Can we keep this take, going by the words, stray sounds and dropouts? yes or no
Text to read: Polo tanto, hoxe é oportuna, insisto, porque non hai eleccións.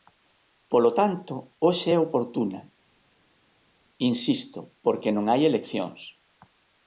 yes